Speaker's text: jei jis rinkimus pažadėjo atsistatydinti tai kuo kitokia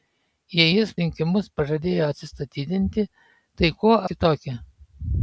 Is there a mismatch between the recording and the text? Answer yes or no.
no